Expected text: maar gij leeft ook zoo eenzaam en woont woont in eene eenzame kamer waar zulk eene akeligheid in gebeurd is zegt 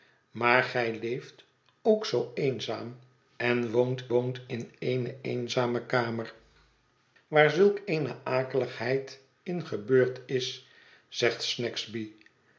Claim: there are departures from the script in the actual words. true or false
false